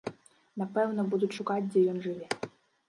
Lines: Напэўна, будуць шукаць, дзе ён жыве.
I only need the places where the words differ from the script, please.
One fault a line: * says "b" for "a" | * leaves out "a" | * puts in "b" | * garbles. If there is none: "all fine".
all fine